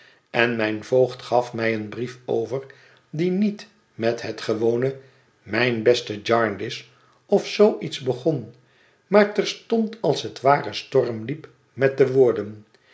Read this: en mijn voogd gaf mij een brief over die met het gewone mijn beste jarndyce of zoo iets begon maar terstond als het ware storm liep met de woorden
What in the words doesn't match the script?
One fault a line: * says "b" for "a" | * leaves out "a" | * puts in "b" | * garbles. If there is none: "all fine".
* puts in "niet"